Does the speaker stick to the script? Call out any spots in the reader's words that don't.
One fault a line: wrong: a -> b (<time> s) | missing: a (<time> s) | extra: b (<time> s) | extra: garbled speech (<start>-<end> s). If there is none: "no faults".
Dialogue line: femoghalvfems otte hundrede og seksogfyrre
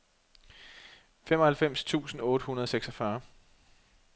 extra: tusind (1.8 s)